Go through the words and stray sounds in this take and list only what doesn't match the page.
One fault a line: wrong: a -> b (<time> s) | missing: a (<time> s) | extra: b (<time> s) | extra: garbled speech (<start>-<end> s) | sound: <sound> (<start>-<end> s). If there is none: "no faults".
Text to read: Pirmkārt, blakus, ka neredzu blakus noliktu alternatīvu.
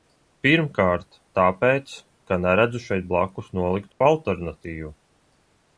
wrong: blakus -> tāpēc (1.4 s)
extra: šeit (2.9 s)
sound: dropout (3.9-4.0 s)